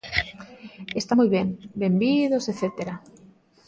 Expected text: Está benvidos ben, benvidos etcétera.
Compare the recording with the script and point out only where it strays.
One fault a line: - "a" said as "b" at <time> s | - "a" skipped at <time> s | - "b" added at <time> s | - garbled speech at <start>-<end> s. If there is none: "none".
- "benvidos" said as "moi" at 1.2 s